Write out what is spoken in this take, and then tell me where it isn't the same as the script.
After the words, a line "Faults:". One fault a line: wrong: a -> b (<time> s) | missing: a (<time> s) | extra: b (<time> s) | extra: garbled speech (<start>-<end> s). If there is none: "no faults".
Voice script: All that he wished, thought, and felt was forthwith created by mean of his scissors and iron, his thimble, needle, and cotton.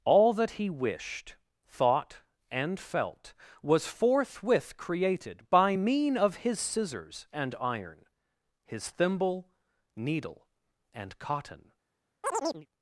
All that he wished, thought, and felt was forthwith created by mean of his scissors and iron, his thimble, needle, and cotton.
Faults:
no faults